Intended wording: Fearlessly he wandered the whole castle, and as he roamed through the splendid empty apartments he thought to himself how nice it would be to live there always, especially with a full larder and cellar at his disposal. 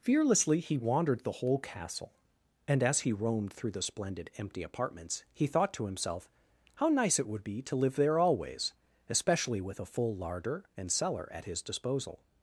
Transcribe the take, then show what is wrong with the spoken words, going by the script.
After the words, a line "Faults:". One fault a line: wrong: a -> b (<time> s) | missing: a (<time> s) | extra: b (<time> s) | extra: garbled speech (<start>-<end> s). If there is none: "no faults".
Fearlessly he wandered the whole castle, and as he roamed through the splendid empty apartments he thought to himself how nice it would be to live there always, especially with a full larder and cellar at his disposal.
Faults:
no faults